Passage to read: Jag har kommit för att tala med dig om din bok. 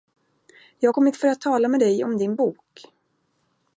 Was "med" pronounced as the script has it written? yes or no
yes